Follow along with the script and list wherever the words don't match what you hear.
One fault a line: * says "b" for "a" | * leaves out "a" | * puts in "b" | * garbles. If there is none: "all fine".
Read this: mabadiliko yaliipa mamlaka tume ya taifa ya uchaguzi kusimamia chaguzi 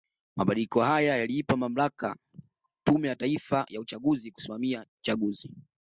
* puts in "haya"